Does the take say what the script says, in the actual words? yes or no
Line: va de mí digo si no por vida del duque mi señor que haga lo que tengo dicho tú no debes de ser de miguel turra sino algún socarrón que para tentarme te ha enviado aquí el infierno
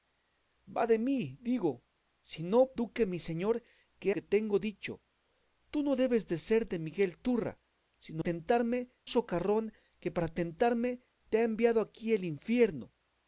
no